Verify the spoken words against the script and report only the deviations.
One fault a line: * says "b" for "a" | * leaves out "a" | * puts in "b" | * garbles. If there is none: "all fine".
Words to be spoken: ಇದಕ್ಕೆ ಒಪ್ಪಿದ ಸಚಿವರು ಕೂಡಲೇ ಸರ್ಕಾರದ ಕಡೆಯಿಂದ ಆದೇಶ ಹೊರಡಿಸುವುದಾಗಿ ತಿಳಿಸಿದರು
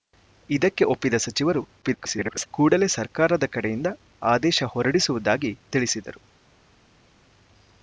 * garbles